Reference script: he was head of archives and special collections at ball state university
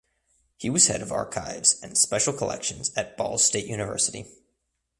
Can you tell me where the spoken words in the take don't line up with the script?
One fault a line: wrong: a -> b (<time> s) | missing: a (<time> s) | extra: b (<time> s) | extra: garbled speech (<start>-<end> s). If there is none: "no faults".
no faults